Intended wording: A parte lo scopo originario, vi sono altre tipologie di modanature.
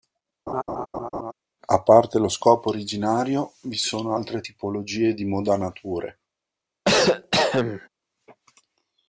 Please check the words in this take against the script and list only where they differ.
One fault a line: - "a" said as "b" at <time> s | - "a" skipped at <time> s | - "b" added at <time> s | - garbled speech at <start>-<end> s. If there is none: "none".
none